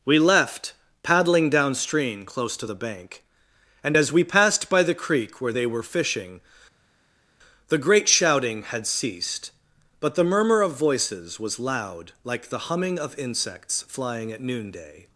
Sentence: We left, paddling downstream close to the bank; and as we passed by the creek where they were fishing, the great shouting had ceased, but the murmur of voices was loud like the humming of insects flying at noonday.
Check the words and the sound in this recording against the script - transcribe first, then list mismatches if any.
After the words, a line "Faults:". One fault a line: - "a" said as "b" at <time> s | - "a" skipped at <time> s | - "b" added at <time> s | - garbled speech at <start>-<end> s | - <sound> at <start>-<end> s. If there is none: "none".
We left, paddling downstream close to the bank; and as we passed by the creek where they were fishing, the great shouting had ceased, but the murmur of voices was loud like the humming of insects flying at noonday.
Faults:
none